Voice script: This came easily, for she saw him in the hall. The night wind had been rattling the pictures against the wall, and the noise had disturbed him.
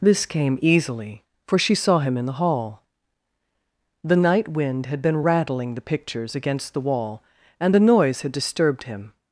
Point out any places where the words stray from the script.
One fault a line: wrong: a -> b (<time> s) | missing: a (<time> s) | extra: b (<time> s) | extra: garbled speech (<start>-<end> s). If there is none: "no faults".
no faults